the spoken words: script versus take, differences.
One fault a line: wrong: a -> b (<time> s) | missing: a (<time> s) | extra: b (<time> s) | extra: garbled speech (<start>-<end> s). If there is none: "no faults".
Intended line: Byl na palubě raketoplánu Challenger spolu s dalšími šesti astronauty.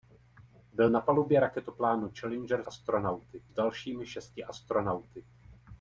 wrong: spolu -> astronauty (2.6 s)